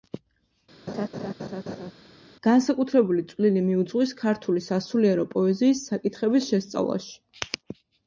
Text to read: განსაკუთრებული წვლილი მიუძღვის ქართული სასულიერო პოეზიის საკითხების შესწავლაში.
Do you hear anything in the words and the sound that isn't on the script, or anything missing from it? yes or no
yes